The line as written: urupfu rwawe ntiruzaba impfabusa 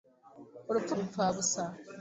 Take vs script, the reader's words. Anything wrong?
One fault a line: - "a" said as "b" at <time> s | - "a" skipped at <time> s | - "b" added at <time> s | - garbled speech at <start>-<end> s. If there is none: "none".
- "rwawe ntiruzaba" skipped at 0.9 s